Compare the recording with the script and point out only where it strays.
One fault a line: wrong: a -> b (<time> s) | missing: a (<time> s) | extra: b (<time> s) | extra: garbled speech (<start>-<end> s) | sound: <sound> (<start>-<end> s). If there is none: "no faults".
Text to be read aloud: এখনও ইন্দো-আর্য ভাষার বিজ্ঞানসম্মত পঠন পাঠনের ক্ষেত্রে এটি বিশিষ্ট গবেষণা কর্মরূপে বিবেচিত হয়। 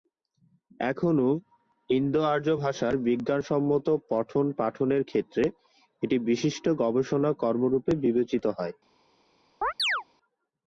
sound: chirp (9.6-10.0 s)